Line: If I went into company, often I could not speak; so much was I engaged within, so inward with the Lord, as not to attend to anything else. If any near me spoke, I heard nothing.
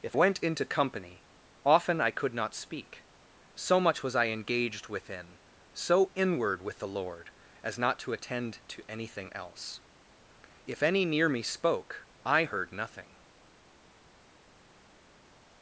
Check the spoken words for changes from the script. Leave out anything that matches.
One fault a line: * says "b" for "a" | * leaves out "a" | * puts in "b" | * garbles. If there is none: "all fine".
* leaves out "I"